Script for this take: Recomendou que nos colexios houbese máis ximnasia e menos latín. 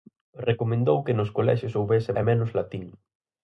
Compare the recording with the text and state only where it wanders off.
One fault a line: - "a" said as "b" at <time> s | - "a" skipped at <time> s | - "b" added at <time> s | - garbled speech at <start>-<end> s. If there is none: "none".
- "máis ximnasia" skipped at 2.1 s